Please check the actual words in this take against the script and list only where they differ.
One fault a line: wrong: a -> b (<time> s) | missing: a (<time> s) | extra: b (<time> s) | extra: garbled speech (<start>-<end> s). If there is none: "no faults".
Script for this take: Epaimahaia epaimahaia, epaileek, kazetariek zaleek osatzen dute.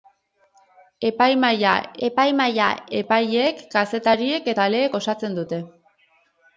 no faults